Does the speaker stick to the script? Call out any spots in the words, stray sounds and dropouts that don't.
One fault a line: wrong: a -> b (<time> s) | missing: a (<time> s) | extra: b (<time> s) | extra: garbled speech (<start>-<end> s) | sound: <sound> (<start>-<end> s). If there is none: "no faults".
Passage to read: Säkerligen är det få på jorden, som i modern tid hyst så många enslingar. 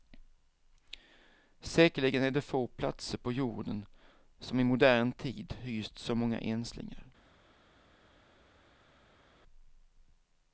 extra: platser (2.7 s)